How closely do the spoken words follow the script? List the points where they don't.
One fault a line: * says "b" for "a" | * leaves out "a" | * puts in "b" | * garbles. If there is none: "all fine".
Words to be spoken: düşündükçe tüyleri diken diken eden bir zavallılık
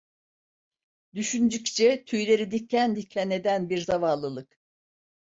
all fine